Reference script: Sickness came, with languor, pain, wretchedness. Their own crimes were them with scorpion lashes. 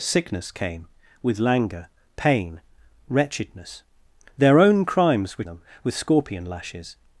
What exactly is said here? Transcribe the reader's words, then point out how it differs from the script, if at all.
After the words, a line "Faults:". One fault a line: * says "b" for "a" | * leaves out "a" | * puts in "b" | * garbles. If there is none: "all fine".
Sickness came, with languor, pain, wretchedness. Their own crimes were them with scorpion lashes.
Faults:
all fine